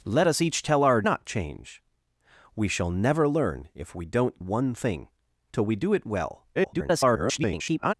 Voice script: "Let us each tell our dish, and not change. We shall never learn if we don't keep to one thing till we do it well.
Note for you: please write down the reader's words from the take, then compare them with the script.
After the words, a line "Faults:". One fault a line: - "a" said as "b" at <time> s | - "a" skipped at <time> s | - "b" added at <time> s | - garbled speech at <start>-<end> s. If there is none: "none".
"Let us each tell our not change. We shall never learn if we don't one thing till we do it well. [garbled]
Faults:
- "dish and" skipped at 1.0 s
- "keep to" skipped at 4.4 s
- garbled speech at 6.5-7.9 s